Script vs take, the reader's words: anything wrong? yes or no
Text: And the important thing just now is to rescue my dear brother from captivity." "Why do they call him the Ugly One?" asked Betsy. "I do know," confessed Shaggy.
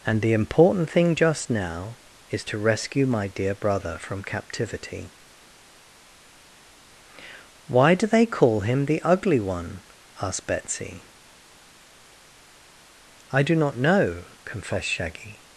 yes